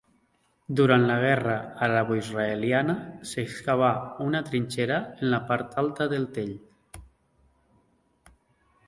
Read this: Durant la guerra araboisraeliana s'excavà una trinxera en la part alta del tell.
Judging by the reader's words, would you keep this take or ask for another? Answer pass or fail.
pass